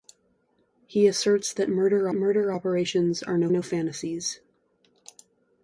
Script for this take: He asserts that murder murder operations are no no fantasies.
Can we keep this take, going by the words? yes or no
yes